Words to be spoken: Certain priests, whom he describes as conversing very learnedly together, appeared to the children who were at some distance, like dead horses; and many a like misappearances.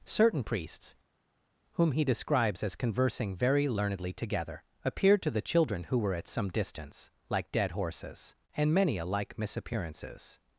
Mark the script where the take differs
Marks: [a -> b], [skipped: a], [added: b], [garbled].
Certain priests, whom he describes as conversing very learnedly together, appeared to the children who were at some distance, like dead horses; and many a like misappearances.